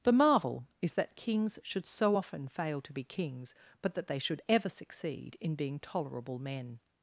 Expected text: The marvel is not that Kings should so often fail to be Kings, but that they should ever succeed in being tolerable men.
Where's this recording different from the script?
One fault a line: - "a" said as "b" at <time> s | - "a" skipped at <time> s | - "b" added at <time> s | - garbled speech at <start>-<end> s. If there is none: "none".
- "not" skipped at 0.9 s